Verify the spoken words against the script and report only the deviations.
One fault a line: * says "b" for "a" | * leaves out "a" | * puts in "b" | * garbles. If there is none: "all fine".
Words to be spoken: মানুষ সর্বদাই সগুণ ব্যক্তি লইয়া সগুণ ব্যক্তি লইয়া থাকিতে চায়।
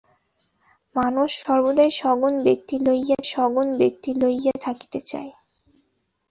all fine